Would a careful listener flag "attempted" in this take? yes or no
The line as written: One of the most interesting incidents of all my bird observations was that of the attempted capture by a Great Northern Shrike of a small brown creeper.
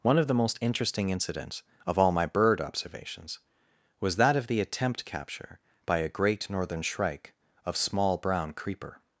yes